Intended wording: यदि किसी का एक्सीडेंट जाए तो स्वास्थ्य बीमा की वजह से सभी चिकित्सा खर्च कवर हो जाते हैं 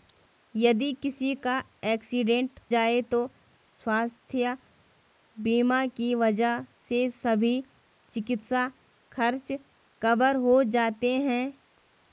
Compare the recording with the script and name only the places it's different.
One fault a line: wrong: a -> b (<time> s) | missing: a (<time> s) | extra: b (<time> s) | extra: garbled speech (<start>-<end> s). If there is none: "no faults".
no faults